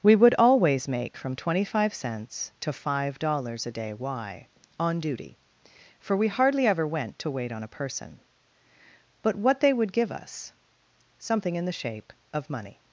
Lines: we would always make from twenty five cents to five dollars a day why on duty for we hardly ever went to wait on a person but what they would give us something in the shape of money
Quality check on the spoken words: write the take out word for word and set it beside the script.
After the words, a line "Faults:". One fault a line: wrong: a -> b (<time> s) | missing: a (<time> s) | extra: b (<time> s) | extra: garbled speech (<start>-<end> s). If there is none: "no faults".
we would always make from twenty five cents to five dollars a day why on duty for we hardly ever went to wait on a person but what they would give us something in the shape of money
Faults:
no faults